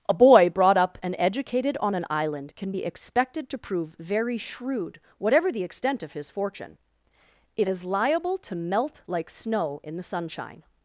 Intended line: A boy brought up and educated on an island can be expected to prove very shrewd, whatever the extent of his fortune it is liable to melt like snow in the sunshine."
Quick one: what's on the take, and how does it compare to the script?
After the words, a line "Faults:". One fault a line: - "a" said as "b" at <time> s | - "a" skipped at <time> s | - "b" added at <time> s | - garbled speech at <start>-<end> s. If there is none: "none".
A boy brought up and educated on an island can be expected to prove very shrewd, whatever the extent of his fortune it is liable to melt like snow in the sunshine."
Faults:
none